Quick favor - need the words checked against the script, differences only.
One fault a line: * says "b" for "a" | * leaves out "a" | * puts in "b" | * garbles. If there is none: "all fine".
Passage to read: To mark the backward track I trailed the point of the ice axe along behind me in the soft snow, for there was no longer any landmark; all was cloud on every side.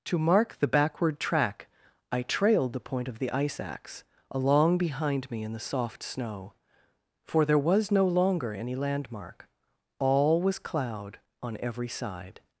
all fine